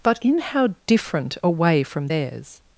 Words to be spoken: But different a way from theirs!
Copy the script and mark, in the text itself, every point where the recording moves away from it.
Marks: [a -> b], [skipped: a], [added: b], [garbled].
But [added: in how] different a way from theirs!